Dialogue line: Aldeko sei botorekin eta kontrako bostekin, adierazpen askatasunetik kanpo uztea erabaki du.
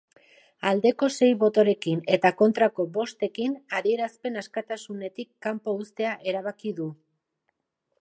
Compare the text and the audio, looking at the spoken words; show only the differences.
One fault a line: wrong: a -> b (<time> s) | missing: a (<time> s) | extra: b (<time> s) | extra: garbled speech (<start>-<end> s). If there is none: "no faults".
no faults